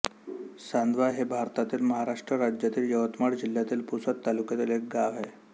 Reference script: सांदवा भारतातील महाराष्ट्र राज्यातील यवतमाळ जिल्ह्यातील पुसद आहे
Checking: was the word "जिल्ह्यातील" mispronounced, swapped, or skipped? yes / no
no